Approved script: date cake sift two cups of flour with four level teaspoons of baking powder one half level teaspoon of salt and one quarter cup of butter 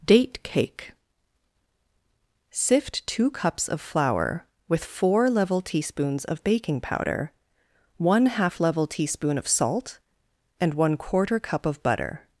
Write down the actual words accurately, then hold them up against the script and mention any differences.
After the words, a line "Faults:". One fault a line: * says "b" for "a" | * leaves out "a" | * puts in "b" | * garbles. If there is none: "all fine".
date cake sift two cups of flour with four level teaspoons of baking powder one half level teaspoon of salt and one quarter cup of butter
Faults:
all fine